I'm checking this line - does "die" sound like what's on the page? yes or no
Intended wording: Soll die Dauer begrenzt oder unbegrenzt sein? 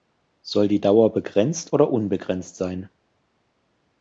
yes